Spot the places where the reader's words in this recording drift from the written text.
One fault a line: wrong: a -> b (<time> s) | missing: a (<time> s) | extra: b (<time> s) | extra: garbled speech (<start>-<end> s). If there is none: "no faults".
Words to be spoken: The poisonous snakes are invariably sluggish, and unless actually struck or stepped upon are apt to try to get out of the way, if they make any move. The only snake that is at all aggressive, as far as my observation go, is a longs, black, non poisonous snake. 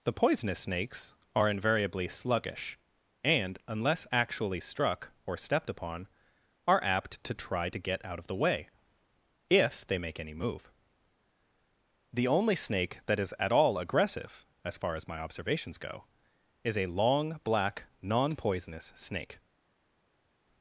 wrong: observation -> observations (15.2 s)
wrong: longs -> long (16.9 s)